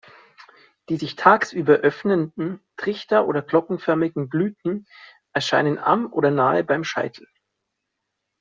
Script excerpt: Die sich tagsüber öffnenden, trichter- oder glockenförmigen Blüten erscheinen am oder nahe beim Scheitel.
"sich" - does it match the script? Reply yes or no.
yes